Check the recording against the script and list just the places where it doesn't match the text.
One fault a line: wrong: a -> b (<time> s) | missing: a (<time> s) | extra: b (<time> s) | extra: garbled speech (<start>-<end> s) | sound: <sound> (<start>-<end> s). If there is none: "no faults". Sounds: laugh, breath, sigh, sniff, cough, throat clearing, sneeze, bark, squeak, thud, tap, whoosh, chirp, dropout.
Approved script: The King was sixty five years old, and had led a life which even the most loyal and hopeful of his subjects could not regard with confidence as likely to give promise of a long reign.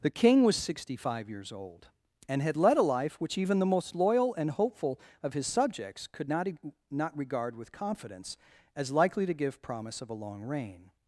extra: not (6.9 s)